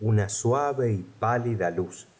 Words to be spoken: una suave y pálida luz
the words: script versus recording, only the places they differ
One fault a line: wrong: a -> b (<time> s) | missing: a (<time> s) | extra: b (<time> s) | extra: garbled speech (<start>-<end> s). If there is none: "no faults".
no faults